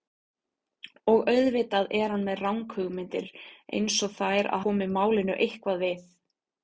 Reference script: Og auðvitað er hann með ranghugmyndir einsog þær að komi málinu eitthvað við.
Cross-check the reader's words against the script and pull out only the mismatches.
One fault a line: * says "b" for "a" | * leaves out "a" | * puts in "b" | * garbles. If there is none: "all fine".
all fine